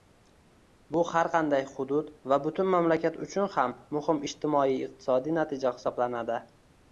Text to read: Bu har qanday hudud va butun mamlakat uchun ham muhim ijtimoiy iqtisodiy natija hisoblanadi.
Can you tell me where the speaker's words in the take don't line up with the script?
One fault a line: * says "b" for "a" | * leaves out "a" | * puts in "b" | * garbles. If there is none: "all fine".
all fine